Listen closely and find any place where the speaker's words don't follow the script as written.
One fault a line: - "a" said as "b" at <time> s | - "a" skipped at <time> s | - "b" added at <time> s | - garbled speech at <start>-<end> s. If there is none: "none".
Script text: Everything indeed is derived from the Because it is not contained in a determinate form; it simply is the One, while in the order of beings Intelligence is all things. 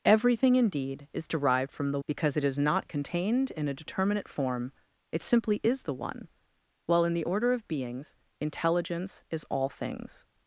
none